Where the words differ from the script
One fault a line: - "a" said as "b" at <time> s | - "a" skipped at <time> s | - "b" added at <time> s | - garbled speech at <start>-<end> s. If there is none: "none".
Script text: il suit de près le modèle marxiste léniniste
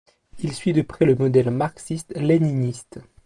none